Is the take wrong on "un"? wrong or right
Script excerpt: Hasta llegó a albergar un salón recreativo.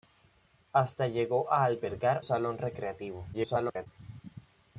wrong